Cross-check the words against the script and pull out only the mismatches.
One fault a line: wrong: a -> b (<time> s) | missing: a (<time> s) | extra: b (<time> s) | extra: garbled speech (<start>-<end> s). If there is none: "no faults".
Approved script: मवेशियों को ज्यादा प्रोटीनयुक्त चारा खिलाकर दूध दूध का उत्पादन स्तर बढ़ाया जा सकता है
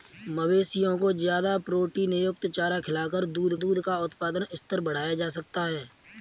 no faults